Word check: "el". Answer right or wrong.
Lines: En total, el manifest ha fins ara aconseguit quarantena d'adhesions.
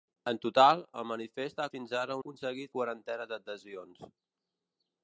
right